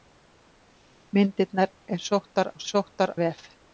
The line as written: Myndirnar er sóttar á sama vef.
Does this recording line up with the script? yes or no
no